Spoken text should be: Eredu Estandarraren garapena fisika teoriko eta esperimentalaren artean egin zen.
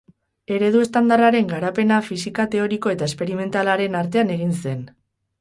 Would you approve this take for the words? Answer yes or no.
yes